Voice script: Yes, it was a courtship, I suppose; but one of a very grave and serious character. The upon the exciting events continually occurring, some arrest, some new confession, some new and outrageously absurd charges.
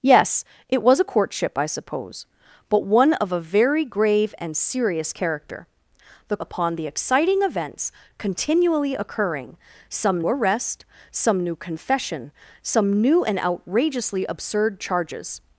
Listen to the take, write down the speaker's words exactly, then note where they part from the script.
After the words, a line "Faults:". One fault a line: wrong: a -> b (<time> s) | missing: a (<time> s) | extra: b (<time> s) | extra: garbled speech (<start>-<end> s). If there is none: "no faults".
Yes, it was a courtship, I suppose; but one of a very grave and serious character. The upon the exciting events continually occurring, some arrest, some new confession, some new and outrageously absurd charges.
Faults:
no faults